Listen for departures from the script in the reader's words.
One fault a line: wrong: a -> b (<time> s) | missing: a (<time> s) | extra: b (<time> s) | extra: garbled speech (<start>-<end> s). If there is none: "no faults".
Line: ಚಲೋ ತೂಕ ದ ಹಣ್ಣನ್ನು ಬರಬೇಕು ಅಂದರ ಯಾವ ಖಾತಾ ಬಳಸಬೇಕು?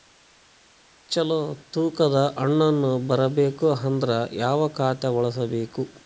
no faults